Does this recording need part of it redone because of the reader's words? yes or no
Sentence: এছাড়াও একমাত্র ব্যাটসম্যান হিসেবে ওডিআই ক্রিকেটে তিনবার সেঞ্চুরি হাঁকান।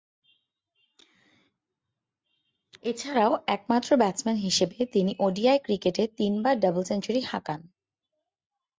yes